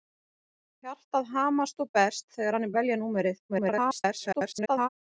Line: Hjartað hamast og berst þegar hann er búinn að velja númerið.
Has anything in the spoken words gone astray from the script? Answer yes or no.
yes